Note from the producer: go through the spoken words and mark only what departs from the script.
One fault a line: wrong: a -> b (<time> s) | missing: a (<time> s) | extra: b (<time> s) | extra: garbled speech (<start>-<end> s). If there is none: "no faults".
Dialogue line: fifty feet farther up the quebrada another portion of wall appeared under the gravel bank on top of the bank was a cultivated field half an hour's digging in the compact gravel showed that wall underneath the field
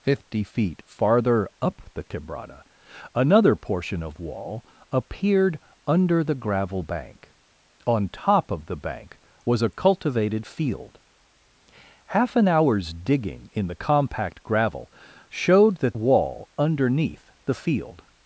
no faults